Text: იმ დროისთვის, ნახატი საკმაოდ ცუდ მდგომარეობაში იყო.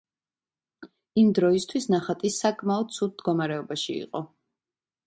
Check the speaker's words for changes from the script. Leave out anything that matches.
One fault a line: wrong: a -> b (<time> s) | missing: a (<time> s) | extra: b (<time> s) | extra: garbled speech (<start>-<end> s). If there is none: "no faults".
no faults